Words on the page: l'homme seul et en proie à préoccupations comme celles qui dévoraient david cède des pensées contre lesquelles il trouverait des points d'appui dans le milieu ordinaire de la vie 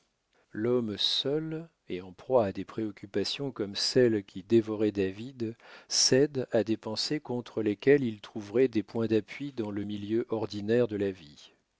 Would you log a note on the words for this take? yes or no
yes